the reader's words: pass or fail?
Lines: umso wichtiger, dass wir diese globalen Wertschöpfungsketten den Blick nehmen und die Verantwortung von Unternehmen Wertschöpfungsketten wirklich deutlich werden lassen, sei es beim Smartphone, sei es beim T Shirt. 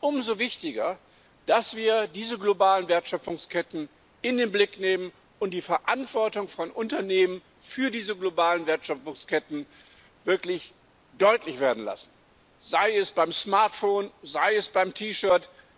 fail